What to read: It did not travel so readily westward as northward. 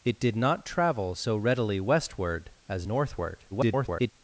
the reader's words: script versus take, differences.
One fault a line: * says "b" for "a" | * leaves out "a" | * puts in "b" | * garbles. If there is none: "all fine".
* garbles